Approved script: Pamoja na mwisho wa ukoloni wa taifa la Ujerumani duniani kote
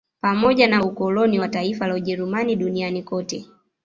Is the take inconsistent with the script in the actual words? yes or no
yes